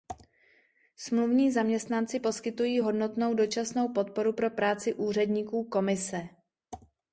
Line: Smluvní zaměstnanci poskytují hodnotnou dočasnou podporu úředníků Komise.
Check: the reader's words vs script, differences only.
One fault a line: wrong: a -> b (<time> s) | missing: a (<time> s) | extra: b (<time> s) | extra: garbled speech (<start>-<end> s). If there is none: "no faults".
extra: pro práci (4.3 s)